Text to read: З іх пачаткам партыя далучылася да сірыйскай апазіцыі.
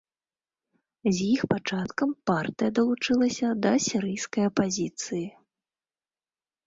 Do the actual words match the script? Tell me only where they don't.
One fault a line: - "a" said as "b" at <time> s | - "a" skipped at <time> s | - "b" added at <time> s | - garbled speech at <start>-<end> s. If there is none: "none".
none